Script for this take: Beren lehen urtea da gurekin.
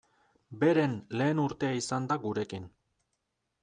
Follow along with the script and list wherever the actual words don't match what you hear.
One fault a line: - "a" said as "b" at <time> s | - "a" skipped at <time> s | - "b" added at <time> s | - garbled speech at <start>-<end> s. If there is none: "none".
- "izan" added at 1.8 s